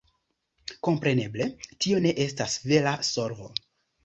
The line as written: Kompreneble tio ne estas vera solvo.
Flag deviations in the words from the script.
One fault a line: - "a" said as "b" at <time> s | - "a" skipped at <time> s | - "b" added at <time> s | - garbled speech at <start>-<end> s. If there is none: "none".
none